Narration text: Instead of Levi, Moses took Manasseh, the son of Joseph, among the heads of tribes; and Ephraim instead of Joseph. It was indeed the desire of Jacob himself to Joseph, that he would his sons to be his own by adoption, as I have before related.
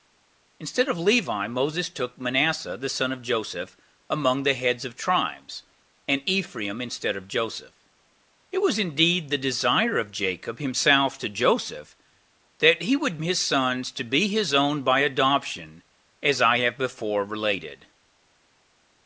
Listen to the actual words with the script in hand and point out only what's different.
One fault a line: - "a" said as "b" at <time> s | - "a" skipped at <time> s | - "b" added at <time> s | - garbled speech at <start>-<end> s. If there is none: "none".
none